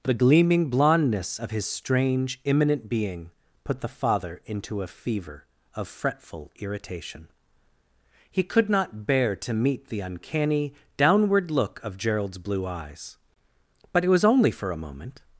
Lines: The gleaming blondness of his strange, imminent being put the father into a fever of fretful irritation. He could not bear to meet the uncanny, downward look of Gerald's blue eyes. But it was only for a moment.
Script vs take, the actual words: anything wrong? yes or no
no